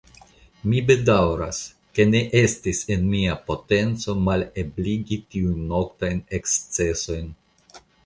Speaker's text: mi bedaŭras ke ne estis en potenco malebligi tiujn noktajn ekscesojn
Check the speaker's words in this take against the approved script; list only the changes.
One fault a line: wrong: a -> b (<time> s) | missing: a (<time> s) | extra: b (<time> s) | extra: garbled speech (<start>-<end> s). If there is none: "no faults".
extra: mia (3.2 s)